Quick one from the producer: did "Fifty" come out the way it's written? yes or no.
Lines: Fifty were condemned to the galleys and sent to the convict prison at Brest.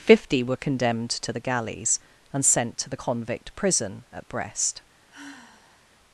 yes